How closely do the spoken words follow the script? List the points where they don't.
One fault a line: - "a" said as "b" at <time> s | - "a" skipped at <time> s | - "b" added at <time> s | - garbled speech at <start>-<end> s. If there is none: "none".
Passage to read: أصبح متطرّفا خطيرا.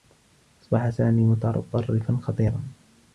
- "سامي" added at 0.9 s